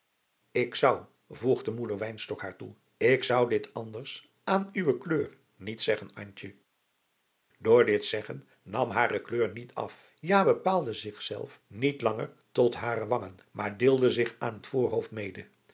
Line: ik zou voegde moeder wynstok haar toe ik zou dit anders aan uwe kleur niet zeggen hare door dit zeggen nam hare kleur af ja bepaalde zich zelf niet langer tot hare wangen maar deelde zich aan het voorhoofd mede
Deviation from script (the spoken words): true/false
true